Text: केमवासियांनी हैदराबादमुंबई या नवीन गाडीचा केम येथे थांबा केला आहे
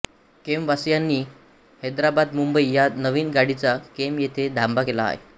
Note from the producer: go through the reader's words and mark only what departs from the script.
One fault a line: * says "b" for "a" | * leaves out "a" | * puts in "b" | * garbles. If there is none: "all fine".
all fine